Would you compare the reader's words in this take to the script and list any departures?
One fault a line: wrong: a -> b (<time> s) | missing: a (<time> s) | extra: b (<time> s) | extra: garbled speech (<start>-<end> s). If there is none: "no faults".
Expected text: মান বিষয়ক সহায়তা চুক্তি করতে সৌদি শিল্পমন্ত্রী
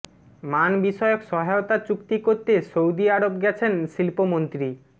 extra: আরব গেছেন (3.1 s)